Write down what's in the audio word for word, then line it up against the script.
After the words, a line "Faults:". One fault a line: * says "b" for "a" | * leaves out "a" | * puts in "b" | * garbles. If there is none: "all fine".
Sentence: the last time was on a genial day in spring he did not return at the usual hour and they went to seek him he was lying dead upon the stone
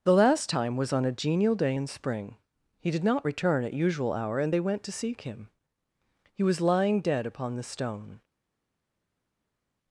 the last time was on a genial day in spring he did not return at usual hour and they went to seek him he was lying dead upon the stone
Faults:
* leaves out "the"